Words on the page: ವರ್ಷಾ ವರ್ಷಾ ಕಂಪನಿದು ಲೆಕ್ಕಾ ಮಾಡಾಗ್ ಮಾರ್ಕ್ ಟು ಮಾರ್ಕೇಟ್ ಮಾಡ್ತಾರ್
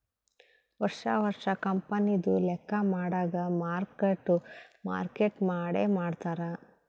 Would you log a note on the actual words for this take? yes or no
yes